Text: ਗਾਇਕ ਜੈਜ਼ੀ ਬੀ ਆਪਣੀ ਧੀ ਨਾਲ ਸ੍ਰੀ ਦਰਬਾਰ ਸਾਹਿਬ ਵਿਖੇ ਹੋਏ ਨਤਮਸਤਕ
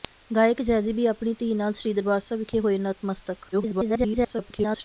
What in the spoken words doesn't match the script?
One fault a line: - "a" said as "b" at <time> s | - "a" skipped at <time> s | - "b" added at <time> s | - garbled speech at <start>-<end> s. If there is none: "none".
- garbled speech at 3.5-4.8 s